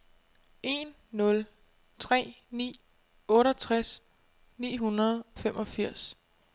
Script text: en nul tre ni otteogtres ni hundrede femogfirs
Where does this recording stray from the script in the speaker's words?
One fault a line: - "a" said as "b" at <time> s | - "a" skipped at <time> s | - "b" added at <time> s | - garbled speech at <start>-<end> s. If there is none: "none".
none